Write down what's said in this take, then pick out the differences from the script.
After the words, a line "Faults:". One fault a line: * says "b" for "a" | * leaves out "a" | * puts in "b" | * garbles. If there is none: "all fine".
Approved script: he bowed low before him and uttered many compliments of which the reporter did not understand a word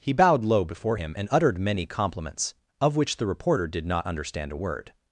he bowed low before him and uttered many compliments of which the reporter did not understand a word
Faults:
all fine